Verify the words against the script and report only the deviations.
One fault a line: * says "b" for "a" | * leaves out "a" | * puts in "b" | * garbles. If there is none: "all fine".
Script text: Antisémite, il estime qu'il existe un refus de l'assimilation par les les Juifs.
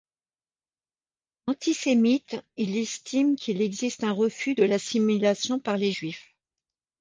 * leaves out "les"